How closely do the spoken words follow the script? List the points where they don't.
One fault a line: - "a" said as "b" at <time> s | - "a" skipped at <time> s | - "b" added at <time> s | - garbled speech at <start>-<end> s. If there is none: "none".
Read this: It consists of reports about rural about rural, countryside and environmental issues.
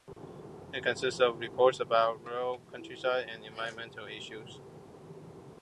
- "about rural" skipped at 2.6 s